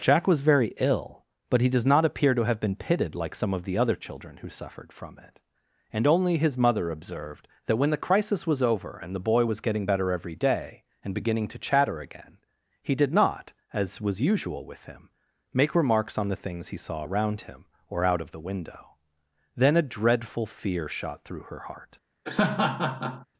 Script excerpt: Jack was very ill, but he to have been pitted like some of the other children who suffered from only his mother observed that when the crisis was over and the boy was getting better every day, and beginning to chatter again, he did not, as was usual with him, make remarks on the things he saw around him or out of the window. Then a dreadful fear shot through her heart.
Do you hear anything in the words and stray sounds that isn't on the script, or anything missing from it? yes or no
yes